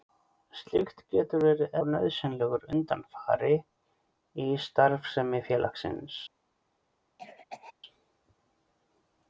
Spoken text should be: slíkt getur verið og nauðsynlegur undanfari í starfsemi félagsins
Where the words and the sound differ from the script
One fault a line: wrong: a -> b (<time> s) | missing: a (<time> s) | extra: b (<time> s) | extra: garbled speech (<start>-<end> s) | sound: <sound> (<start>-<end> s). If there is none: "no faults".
sound: cough (7.2-7.7 s)